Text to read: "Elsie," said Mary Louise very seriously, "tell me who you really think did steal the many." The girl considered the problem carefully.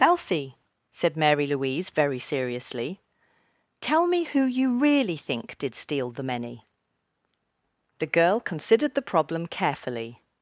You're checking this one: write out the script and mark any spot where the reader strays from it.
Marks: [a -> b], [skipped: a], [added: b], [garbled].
"Elsie," said Mary Louise very seriously, "tell me who you really think did steal the many." The girl considered the problem carefully.